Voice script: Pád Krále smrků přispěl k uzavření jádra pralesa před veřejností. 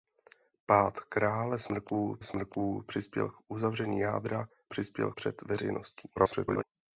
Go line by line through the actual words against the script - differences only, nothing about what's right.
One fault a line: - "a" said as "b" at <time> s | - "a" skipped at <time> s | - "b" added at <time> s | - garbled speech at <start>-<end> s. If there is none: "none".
- "smrků" added at 2.2 s
- "pralesa" said as "přispěl" at 4.7 s
- garbled speech at 6.2-6.6 s